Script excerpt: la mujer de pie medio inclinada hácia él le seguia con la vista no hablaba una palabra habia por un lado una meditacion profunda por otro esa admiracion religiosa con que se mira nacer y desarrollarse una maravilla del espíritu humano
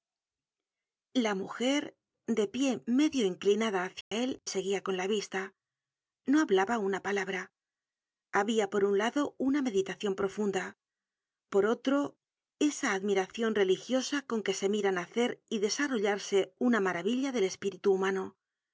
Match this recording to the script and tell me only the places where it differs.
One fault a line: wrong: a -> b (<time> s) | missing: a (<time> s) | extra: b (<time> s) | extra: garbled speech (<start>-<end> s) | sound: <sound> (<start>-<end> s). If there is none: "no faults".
sound: dropout (4.0-4.1 s)
missing: le (4.4 s)